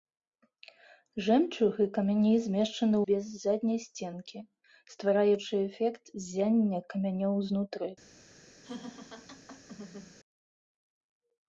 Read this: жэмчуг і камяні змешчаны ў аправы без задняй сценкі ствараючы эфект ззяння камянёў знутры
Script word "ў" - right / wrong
wrong